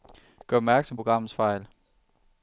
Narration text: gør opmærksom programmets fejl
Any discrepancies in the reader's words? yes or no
no